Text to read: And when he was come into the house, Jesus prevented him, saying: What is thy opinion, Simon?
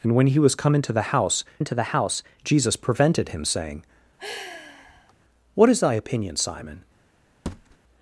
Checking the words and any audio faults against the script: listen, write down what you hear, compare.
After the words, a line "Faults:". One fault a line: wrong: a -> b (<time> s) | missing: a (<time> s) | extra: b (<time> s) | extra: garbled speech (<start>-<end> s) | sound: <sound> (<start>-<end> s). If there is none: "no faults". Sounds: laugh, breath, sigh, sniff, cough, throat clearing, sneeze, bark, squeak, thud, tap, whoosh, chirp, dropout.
And when he was come into the house into the house, Jesus prevented him, saying: What is thy opinion, Simon?
Faults:
extra: into the house (1.6 s)
sound: sigh (4.2-5.1 s)
sound: thud (7.5-7.8 s)